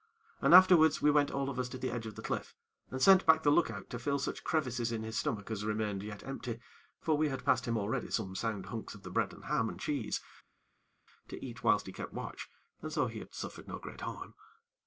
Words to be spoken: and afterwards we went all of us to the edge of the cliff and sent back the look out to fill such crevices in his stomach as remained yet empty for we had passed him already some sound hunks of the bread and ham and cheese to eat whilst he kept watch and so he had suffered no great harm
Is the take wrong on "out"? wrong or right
right